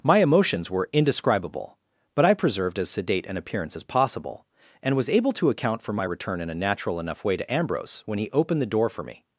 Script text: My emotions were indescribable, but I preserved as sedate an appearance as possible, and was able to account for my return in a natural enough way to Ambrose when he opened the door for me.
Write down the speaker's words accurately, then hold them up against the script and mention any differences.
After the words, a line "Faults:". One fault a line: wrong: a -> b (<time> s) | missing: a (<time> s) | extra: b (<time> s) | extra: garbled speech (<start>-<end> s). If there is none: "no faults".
My emotions were indescribable, but I preserved as sedate an appearance as possible, and was able to account for my return in a natural enough way to Ambrose when he opened the door for me.
Faults:
no faults